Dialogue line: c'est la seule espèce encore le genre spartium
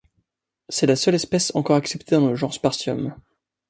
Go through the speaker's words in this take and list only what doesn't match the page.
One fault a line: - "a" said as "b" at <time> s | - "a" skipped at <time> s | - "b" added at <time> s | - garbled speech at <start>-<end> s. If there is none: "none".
- "acceptée dans" added at 1.8 s